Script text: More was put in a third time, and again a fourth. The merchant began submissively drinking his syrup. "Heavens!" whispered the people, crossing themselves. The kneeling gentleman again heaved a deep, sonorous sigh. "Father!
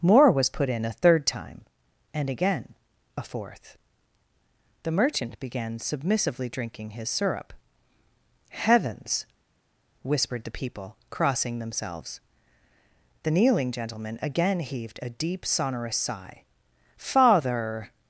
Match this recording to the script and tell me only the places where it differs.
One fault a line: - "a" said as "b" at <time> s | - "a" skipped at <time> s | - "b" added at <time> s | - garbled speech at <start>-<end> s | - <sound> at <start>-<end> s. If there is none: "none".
none